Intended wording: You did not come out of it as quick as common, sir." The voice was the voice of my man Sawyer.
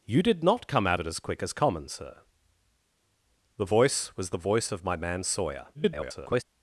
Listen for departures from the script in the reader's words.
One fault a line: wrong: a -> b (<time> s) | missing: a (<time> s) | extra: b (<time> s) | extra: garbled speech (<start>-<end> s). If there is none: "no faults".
missing: of (1.0 s)
extra: garbled speech (5.7-6.4 s)